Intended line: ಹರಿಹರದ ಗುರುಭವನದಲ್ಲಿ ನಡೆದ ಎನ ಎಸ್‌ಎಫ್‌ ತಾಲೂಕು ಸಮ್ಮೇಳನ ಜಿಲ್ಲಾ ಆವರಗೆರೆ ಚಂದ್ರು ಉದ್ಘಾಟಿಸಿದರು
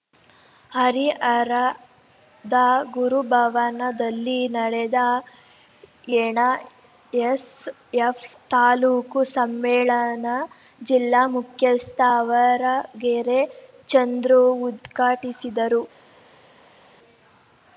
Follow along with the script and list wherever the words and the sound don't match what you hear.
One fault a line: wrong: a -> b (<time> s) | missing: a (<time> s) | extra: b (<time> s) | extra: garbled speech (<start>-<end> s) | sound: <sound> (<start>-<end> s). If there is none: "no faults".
extra: ಮುಖ್ಯಸ್ಥ (11.3 s)